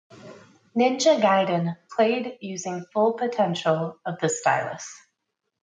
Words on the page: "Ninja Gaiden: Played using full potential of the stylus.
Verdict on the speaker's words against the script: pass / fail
pass